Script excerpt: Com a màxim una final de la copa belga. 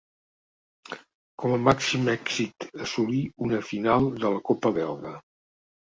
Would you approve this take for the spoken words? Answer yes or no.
no